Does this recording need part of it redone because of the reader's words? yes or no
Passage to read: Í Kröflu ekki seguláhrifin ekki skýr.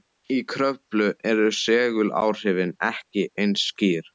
yes